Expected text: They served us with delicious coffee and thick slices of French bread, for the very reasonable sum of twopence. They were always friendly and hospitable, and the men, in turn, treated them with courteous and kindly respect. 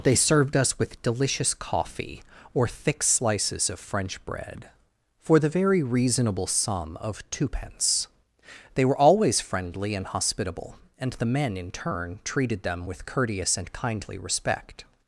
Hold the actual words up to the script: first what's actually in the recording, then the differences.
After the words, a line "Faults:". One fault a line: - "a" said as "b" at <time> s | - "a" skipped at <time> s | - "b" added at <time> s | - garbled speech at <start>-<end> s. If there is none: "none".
They served us with delicious coffee or thick slices of French bread, for the very reasonable sum of twopence. They were always friendly and hospitable, and the men, in turn, treated them with courteous and kindly respect.
Faults:
- "and" said as "or" at 2.5 s